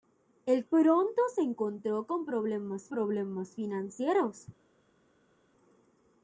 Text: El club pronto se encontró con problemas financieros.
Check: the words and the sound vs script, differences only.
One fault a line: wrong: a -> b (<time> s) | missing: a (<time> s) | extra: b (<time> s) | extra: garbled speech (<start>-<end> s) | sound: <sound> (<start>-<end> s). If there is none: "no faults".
missing: club (0.7 s)
extra: problemas (2.9 s)